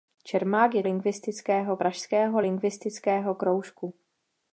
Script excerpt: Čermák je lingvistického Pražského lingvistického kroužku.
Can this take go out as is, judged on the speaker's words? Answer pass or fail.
pass